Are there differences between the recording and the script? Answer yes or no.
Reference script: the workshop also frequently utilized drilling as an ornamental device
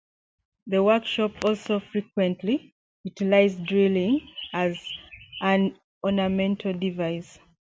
no